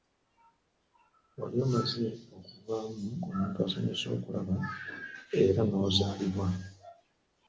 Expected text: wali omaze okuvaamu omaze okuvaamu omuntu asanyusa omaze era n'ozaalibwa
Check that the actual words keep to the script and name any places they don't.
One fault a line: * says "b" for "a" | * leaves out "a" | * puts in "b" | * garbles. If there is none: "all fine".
* leaves out "omaze okuvaamu"
* says "okulaba" for "omaze"